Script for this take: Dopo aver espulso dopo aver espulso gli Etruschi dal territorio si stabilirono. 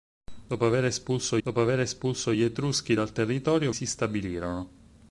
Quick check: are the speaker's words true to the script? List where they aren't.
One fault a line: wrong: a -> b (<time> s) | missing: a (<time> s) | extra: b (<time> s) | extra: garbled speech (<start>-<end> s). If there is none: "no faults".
no faults